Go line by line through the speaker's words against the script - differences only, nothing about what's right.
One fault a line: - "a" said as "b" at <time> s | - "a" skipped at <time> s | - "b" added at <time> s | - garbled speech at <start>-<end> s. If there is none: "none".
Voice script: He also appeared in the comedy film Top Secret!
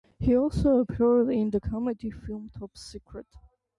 none